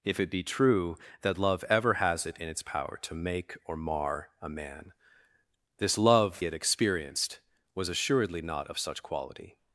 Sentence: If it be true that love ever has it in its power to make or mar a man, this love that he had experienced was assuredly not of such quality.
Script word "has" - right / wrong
right